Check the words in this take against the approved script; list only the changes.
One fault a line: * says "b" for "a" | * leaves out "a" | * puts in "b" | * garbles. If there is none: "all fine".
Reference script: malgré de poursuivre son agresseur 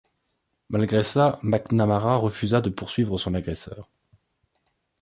* puts in "cela mcnamara refusa"